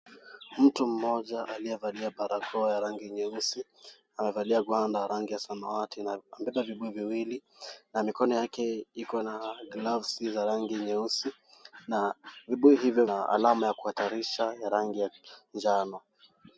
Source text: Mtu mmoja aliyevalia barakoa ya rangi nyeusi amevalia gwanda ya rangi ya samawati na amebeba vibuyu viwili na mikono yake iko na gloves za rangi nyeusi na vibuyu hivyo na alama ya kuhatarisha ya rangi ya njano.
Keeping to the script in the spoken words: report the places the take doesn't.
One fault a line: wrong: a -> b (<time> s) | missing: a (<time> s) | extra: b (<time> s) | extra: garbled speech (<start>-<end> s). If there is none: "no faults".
no faults